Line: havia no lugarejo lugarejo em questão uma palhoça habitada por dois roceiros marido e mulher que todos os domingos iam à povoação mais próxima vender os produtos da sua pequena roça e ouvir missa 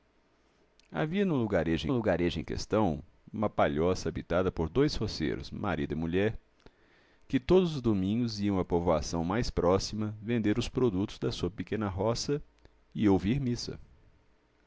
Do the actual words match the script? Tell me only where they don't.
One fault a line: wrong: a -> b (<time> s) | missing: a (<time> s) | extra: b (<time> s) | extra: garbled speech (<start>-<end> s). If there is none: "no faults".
no faults